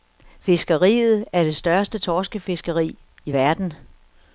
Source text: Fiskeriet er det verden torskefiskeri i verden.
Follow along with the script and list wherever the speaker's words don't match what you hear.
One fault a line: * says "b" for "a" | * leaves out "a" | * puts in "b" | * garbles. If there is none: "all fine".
* says "største" for "verden"